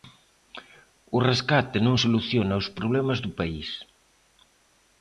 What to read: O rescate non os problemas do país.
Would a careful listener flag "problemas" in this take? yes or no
no